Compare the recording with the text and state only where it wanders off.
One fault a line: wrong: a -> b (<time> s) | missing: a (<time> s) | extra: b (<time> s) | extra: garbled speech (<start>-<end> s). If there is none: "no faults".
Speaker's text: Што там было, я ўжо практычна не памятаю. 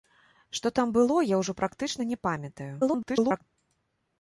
extra: garbled speech (2.8-3.4 s)